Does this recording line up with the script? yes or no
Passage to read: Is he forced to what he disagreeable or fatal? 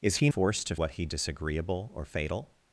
yes